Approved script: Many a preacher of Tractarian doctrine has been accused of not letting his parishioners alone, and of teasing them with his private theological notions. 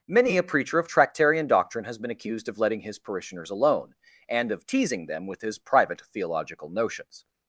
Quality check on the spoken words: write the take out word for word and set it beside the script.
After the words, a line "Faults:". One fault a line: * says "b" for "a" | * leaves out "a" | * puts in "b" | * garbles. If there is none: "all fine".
Many a preacher of Tractarian doctrine has been accused of letting his parishioners alone, and of teasing them with his private theological notions.
Faults:
* leaves out "not"